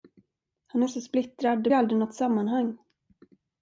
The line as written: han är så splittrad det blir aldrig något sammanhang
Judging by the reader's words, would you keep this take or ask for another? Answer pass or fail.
fail